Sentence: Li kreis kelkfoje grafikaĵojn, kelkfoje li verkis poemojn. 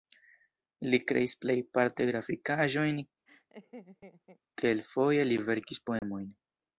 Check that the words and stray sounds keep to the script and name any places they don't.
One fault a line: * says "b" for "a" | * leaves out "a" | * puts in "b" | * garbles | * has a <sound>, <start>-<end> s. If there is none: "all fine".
* says "plejparte" for "kelkfoje"
* has a laugh, 3.3-4.4 s
* has a dropout, 6.0-6.0 s